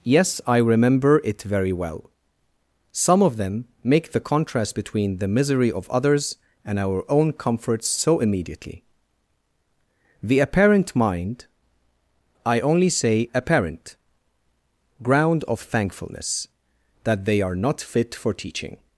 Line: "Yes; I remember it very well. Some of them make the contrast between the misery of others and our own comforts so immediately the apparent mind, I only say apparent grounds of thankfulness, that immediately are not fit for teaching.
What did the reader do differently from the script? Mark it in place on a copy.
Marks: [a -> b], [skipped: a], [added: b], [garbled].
"Yes; I remember it very well. Some of them make the contrast between the misery of others and our own comforts so immediately the apparent mind, I only say apparent [grounds -> ground] of thankfulness, that [immediately -> they] are not fit for teaching.